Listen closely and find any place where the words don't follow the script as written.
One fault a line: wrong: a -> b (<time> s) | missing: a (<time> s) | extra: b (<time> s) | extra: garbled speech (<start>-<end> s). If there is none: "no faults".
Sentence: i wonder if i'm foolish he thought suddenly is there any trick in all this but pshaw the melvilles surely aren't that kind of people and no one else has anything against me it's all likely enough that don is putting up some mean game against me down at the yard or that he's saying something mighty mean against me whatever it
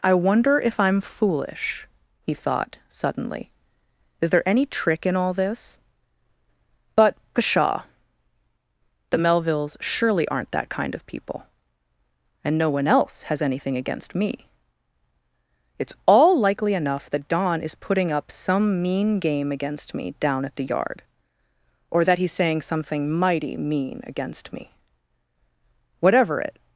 no faults